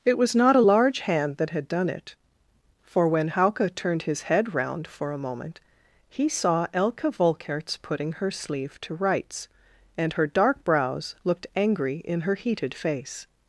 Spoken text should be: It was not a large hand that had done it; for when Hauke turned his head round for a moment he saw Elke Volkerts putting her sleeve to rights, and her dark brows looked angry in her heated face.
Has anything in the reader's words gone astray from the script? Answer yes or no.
no